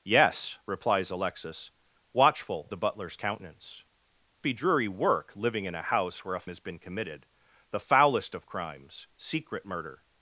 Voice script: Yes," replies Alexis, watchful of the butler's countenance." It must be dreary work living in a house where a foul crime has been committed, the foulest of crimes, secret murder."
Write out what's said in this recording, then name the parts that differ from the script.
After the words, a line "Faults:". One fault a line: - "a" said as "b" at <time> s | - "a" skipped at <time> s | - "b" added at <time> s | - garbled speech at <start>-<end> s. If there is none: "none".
Yes," replies Alexis, watchful the butler's countenance." Be dreary work living in a house where a has been committed, the foulest of crimes, secret murder."
Faults:
- "of" skipped at 2.7 s
- "It must" skipped at 3.8 s
- "foul crime" skipped at 6.4 s